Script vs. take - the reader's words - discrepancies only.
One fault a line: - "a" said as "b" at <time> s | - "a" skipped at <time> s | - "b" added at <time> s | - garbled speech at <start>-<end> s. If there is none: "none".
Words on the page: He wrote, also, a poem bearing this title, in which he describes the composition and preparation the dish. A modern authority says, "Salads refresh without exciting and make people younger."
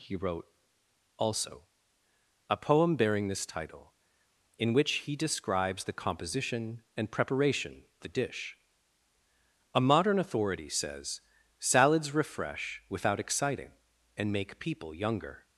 none